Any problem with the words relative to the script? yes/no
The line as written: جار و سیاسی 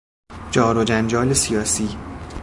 yes